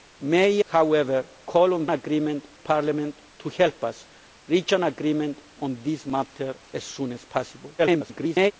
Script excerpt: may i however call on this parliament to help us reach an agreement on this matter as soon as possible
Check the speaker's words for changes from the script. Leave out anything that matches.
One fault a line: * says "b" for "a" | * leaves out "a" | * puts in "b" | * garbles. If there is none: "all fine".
* leaves out "i"
* says "agreement" for "this"
* garbles